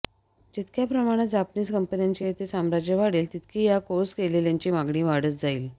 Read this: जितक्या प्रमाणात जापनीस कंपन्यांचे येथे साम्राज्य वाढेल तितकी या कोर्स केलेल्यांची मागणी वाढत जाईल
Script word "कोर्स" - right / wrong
right